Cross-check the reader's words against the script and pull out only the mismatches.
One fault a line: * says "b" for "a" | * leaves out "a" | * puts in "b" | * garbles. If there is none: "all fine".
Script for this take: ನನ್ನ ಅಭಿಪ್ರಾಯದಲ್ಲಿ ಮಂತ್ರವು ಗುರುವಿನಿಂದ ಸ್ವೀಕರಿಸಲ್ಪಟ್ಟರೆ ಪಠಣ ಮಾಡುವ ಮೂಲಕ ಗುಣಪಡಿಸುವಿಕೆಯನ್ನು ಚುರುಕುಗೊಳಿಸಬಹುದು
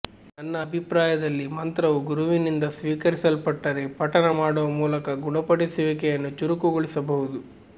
all fine